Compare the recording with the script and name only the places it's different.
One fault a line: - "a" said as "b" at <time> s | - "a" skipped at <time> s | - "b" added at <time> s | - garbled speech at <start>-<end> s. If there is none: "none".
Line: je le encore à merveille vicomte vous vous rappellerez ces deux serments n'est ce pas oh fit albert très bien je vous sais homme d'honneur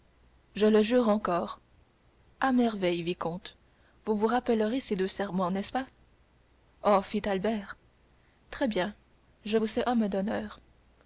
- "jure" added at 0.8 s